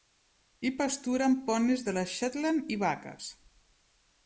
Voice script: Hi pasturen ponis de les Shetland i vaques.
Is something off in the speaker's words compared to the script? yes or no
no